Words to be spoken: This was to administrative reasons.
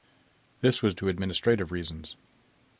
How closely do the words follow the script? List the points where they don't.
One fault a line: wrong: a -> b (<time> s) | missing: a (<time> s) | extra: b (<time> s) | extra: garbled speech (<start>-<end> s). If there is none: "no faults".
no faults